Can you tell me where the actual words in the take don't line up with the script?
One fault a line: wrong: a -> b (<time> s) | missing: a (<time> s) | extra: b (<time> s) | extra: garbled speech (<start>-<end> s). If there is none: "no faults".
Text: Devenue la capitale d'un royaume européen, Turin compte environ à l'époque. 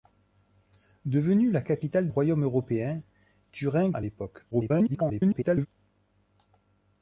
missing: d'un (2.1 s)
missing: compte environ (3.9 s)
extra: garbled speech (4.5-5.7 s)